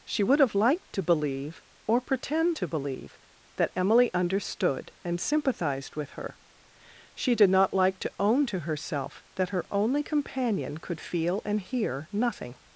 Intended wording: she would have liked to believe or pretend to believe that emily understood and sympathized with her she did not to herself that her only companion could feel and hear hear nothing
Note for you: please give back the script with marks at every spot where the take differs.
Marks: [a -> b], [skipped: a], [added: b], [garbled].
she would have liked to believe or pretend to believe that emily understood and sympathized with her she did not [added: like] to [added: own to] herself that her only companion could feel and hear [skipped: hear] nothing